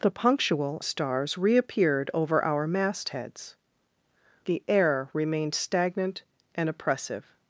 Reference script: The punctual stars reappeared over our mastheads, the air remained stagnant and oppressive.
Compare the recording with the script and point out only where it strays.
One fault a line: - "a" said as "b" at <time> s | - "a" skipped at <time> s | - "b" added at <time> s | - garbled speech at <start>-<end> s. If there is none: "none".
none